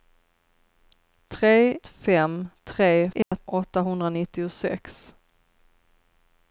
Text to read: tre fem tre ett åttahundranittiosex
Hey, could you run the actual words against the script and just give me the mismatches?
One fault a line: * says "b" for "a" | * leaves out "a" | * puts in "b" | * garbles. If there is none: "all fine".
all fine